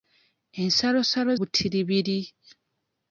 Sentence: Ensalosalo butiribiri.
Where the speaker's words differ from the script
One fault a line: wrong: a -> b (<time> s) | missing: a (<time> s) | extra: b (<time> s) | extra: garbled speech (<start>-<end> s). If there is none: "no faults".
no faults